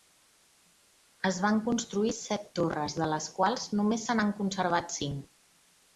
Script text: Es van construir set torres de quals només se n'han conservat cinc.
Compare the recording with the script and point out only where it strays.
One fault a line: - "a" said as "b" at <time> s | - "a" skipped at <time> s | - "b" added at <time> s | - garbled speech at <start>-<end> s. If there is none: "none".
- "les" added at 3.1 s